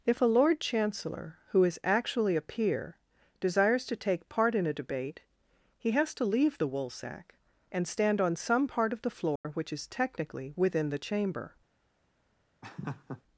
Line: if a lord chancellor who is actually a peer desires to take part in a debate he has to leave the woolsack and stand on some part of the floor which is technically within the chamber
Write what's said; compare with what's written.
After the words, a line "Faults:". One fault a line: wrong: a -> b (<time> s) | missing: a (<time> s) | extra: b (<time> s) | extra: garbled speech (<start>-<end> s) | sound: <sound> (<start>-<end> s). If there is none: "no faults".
if a lord chancellor who is actually a peer desires to take part in a debate he has to leave the woolsack and stand on some part of the floor which is technically within the chamber
Faults:
sound: dropout (9.4-9.4 s)
sound: laugh (12.6-13.2 s)